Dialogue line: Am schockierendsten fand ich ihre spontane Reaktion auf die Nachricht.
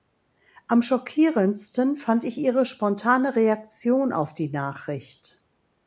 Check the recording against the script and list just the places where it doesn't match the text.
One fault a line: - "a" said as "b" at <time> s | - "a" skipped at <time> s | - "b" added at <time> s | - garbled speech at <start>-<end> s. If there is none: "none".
none